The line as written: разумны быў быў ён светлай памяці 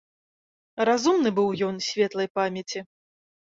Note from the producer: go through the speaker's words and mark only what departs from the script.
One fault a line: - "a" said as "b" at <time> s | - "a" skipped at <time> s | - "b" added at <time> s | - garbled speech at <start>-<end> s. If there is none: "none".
- "быў" skipped at 1.5 s